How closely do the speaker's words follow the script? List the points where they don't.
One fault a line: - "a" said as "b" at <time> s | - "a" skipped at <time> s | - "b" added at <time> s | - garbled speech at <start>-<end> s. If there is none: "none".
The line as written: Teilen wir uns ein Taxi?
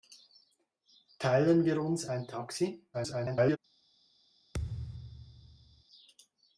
- garbled speech at 2.9-3.6 s